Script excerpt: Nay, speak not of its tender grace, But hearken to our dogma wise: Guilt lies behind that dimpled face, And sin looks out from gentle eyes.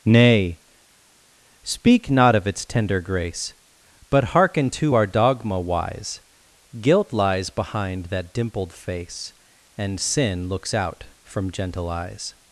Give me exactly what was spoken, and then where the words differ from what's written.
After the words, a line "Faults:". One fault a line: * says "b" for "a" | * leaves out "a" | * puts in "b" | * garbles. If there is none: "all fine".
Nay, speak not of its tender grace, But hearken to our dogma wise: Guilt lies behind that dimpled face, And sin looks out from gentle eyes.
Faults:
all fine